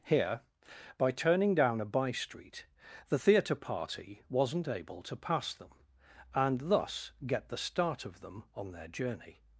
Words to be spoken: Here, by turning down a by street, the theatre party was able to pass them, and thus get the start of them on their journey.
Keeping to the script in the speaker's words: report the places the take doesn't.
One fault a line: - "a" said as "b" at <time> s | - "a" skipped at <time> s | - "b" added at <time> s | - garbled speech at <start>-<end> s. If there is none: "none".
- "was" said as "wasn't" at 4.3 s